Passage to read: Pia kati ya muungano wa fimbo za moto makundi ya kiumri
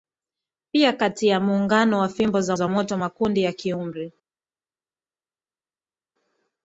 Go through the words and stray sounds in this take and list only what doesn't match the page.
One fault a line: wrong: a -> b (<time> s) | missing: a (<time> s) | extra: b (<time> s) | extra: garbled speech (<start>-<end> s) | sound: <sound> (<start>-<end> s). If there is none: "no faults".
extra: za (2.5 s)